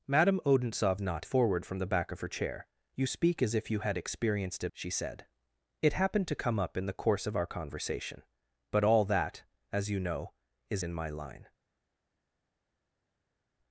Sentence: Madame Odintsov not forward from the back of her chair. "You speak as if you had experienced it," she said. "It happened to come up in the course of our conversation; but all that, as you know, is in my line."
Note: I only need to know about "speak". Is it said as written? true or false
true